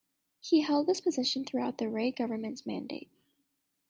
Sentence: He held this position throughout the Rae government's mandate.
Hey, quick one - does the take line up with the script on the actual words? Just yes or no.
yes